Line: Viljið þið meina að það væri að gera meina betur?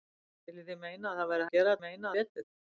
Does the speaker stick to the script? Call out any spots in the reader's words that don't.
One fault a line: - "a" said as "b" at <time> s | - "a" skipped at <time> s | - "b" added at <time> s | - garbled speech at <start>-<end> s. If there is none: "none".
none